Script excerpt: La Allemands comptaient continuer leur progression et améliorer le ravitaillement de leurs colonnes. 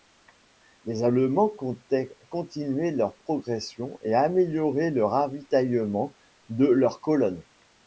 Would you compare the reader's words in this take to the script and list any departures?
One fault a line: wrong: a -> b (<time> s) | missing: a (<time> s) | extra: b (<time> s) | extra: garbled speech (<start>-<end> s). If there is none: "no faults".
wrong: La -> Les (0.8 s)